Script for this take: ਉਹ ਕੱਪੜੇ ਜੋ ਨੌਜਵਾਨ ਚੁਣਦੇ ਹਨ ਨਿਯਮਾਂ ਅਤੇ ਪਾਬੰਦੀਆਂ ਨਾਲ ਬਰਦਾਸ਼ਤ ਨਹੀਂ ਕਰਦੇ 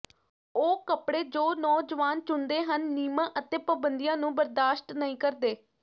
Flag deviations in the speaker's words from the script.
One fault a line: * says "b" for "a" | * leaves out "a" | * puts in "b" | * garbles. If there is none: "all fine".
* says "ਨੂੰ" for "ਨਾਲ"